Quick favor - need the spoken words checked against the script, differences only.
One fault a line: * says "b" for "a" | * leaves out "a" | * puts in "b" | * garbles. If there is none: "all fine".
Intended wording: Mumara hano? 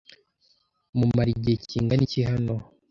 * puts in "igihe kingana iki"